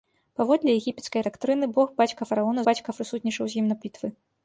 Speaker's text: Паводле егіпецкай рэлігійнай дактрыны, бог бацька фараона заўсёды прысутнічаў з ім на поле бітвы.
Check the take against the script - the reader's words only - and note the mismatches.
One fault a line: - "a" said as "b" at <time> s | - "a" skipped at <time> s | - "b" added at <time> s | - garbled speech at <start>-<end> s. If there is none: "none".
- "рэлігійнай" skipped at 1.2 s
- "заўсёды" said as "бацька" at 2.7 s
- "поле" skipped at 3.8 s